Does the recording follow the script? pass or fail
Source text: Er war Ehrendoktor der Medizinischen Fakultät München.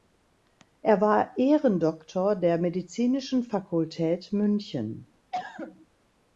pass